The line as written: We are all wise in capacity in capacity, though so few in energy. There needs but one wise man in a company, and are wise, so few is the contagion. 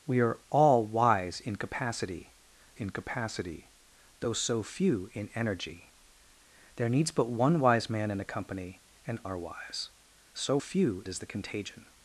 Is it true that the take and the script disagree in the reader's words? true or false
false